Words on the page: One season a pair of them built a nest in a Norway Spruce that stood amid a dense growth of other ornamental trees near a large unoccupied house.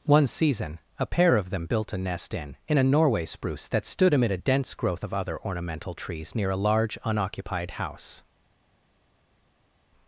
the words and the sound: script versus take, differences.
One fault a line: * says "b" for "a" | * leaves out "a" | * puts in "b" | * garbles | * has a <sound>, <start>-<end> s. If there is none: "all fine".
* puts in "in"